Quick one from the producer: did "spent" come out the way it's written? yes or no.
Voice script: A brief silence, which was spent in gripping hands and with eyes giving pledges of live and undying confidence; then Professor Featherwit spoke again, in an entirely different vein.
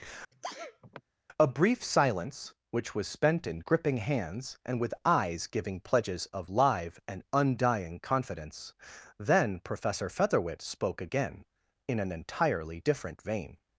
yes